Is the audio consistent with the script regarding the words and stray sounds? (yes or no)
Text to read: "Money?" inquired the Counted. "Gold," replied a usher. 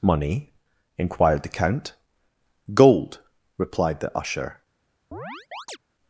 no